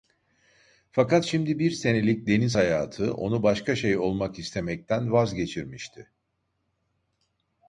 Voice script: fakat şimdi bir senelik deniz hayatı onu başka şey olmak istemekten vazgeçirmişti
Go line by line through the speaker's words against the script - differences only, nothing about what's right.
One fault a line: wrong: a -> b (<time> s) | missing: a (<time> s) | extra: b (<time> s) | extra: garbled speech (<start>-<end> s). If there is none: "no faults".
no faults